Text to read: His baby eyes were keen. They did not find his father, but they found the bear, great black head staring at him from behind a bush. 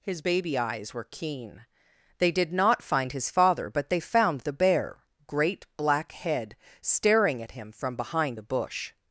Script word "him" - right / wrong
right